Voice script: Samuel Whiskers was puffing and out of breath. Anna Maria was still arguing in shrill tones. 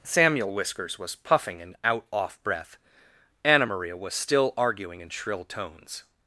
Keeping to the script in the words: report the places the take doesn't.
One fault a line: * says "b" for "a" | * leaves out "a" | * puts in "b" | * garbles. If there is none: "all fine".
* says "off" for "of"